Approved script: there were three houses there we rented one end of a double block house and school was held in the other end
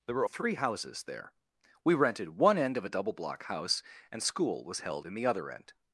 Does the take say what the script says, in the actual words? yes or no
yes